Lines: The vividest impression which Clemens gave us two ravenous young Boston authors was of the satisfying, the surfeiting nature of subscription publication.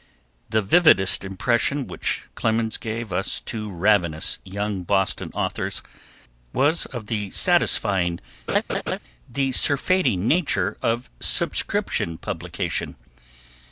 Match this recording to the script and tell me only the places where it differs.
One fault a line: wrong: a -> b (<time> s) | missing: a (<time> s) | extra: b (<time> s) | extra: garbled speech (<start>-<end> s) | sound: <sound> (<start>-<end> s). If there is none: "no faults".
sound: laugh (8.5-9.0 s)